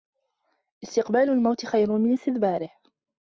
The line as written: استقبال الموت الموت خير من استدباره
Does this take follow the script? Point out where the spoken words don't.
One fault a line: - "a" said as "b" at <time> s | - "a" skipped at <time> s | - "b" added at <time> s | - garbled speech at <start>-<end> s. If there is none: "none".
- "الموت" skipped at 1.7 s